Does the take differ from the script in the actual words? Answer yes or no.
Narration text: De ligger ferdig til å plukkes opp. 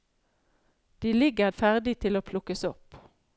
no